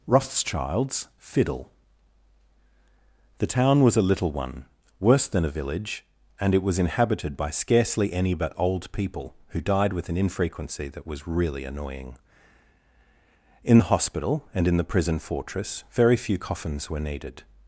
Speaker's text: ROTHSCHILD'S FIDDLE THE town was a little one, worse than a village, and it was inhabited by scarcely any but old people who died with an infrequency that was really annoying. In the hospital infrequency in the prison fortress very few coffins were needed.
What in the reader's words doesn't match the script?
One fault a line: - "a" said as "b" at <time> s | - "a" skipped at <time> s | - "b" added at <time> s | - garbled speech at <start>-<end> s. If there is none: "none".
- "infrequency" said as "and" at 14.5 s